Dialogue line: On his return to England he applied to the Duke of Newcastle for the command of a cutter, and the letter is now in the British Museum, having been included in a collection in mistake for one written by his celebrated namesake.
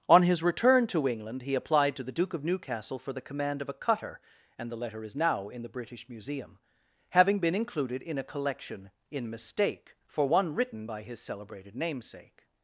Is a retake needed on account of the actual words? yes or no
no